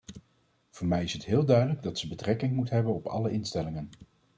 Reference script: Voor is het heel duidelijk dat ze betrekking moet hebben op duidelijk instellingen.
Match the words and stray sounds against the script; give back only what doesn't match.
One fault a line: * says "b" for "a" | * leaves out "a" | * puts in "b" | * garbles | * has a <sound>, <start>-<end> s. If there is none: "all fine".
* puts in "mij"
* says "alle" for "duidelijk"